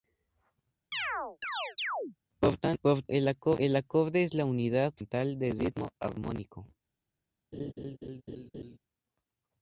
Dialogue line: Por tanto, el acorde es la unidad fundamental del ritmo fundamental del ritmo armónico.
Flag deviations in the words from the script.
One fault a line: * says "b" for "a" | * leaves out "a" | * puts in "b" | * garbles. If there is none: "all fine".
* leaves out "fundamental del ritmo"